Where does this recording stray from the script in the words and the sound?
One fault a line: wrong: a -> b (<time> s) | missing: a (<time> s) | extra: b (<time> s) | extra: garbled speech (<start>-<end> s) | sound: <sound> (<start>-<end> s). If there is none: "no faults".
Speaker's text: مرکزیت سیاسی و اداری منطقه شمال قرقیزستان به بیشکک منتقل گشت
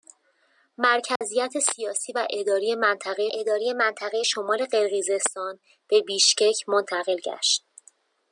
sound: dropout (1.2-1.2 s)
extra: اداری منطقه (3.3 s)